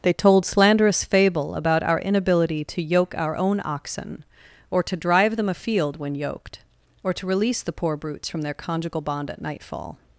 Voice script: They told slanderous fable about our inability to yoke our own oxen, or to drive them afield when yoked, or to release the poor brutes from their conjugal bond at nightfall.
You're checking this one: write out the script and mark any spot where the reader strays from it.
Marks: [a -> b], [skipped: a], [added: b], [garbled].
They told slanderous fable about our inability to yoke our own oxen, or to drive them afield when yoked, or to release the poor brutes from their conjugal bond at nightfall.